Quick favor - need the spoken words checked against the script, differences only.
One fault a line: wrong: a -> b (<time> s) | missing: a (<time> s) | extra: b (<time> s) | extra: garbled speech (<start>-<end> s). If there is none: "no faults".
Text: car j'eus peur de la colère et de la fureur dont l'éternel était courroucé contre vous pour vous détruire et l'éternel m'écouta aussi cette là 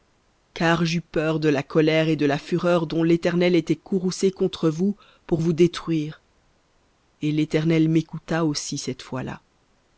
extra: fois (9.0 s)